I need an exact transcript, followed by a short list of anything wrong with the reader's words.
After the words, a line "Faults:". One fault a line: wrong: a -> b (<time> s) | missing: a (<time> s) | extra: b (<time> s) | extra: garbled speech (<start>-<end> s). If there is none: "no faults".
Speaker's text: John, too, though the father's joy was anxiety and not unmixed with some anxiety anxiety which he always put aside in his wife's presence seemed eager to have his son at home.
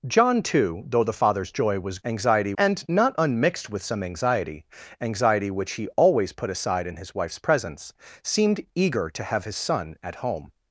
John, too, though the father's joy was anxiety and not unmixed with some anxiety anxiety which he always put aside in his wife's presence seemed eager to have his son at home.
Faults:
no faults